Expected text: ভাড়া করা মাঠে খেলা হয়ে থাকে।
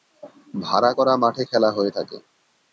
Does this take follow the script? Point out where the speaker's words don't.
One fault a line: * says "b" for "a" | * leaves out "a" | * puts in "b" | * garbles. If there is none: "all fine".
all fine